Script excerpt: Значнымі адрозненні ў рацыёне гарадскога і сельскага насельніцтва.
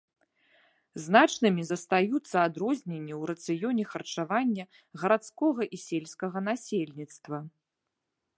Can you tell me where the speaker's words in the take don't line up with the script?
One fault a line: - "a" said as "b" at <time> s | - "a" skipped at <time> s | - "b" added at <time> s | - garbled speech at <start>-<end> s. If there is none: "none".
- "застаюцца" added at 1.7 s
- "харчавання" added at 3.9 s